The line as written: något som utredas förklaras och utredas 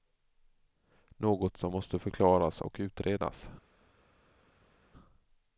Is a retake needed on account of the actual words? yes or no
yes